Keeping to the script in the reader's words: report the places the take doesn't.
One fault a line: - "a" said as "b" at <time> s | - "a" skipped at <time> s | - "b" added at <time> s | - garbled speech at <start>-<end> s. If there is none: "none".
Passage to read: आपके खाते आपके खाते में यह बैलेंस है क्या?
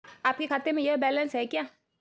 - "आपके खाते" skipped at 0.7 s